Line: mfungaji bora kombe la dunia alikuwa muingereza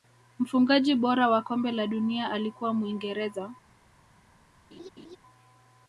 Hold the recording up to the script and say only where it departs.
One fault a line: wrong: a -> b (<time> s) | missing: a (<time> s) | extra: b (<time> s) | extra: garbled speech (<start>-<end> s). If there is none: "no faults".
extra: wa (1.3 s)